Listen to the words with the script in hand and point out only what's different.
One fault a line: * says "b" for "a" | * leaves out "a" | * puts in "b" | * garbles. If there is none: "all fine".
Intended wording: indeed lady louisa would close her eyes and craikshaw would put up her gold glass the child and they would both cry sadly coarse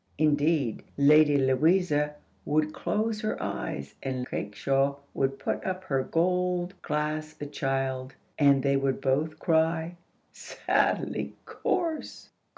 all fine